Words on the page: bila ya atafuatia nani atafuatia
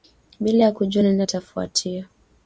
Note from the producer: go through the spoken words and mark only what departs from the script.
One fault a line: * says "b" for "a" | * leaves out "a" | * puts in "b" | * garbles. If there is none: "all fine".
* says "kujua" for "atafuatia"